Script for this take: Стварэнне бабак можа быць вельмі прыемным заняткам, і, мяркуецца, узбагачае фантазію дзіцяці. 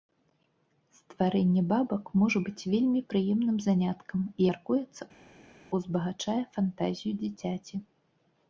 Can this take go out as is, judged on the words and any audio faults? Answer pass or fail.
pass